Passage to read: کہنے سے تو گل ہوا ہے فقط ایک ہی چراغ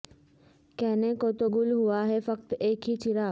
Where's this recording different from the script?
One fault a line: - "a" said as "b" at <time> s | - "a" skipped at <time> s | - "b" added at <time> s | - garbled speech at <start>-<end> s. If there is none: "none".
- "سے" said as "کو" at 1.1 s